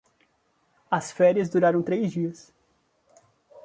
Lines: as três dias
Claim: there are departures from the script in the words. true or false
true